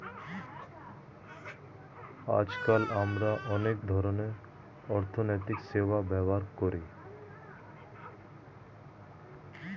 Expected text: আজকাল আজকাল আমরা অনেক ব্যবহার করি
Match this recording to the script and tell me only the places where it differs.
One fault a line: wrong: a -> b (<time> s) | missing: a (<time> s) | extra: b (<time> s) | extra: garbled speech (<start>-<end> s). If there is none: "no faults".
missing: আজকাল (2.8 s)
extra: ধরনের অর্থনৈতিক সেবা (3.9 s)